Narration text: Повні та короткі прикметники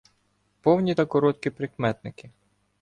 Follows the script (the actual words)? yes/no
yes